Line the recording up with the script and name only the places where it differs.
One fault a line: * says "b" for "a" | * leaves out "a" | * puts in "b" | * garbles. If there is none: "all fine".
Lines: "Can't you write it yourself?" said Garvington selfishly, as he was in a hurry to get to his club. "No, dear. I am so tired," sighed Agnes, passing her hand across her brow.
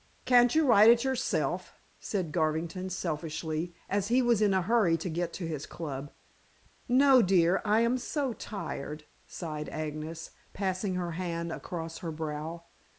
all fine